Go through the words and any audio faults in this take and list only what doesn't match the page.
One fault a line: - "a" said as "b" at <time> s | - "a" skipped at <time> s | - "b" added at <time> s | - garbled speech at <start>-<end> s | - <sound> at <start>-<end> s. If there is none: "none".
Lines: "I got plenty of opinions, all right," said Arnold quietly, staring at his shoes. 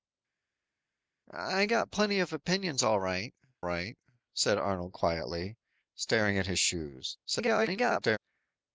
- "right" added at 3.6 s
- garbled speech at 7.2-8.2 s